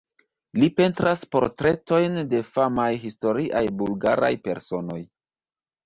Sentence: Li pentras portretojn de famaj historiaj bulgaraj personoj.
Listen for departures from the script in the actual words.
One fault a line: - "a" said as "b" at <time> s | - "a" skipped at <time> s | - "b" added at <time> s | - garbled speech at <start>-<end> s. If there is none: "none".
none